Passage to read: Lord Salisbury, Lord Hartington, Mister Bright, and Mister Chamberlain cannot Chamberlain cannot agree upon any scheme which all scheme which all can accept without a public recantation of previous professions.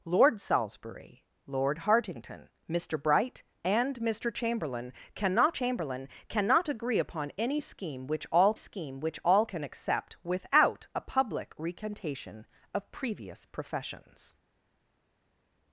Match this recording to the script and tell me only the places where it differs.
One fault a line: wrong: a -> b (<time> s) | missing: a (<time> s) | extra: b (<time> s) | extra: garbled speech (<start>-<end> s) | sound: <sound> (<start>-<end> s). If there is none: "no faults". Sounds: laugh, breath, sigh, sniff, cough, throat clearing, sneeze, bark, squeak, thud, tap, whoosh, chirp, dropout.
no faults